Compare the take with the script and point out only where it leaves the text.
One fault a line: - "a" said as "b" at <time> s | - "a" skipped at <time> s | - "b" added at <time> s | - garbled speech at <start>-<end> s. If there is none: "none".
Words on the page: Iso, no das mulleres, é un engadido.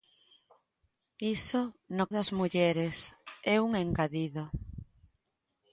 none